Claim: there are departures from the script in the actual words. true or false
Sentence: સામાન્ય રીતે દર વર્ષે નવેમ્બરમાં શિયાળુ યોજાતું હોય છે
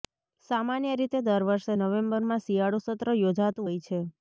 true